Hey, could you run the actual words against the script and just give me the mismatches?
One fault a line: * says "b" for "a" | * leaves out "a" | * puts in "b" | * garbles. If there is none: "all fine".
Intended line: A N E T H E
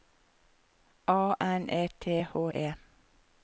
all fine